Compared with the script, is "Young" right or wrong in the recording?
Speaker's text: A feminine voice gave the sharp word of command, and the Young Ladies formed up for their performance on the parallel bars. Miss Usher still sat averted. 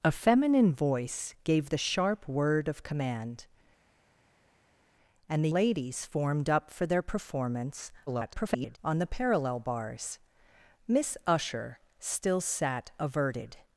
wrong